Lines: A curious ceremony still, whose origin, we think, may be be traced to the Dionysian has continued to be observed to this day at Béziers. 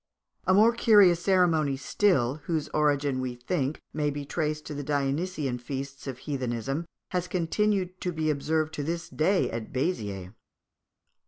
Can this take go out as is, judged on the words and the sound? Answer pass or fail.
fail